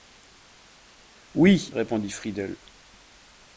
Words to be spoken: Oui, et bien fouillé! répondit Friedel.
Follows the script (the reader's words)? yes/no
no